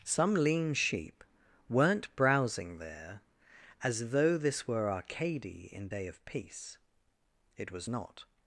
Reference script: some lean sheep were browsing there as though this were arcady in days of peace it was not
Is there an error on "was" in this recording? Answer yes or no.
no